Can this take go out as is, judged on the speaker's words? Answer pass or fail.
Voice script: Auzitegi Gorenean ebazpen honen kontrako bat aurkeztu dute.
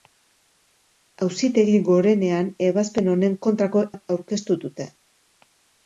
pass